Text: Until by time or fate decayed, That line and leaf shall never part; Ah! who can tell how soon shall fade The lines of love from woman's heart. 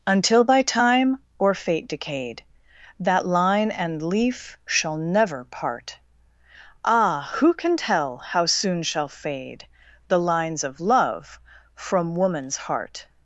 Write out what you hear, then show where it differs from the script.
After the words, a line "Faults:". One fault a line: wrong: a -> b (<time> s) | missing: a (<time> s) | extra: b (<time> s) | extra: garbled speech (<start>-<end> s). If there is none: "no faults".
Until by time or fate decayed, That line and leaf shall never part; Ah! who can tell how soon shall fade The lines of love from woman's heart.
Faults:
no faults